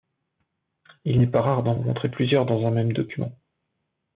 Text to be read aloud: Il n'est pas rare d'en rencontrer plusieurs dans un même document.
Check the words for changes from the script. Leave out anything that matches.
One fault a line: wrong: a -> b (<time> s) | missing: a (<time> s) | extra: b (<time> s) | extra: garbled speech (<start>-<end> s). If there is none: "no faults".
no faults